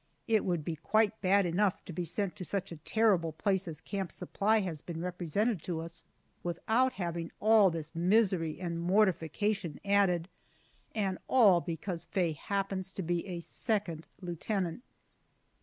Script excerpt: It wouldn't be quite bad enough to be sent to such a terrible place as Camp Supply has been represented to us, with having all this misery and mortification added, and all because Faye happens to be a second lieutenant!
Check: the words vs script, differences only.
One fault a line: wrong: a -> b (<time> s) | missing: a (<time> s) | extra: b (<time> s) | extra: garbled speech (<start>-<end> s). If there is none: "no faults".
wrong: wouldn't -> would (0.5 s)
wrong: with -> without (6.4 s)